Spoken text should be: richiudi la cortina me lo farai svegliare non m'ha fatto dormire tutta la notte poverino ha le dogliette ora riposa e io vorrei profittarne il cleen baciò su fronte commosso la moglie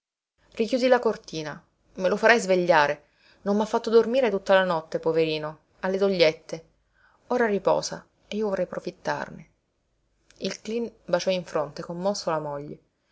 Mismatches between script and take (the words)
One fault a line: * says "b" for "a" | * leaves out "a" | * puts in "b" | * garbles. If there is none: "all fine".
* says "in" for "su"